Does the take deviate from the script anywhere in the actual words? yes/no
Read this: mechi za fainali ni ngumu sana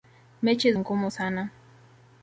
yes